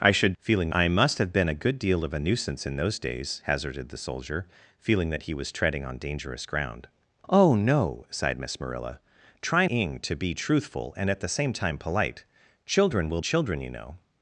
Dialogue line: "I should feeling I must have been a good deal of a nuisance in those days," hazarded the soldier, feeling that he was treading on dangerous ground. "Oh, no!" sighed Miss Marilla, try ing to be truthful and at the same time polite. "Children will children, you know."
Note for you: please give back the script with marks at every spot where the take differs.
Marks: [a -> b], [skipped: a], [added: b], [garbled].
"I should feeling I must have been a good deal of a nuisance in those days," hazarded the soldier, feeling that he was treading on dangerous ground. "Oh, no!" sighed Miss Marilla, try ing to be truthful and at the same time polite. "Children will children, you know."